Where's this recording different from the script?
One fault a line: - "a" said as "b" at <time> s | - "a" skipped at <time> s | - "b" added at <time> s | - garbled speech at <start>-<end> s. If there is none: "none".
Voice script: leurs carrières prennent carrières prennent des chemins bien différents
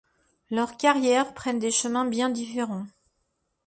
- "carrières prennent" skipped at 1.6 s